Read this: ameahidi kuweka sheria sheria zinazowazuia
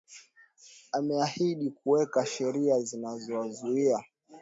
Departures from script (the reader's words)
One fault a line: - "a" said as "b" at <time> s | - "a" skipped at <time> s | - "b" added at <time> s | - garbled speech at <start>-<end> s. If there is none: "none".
- "sheria" skipped at 2.8 s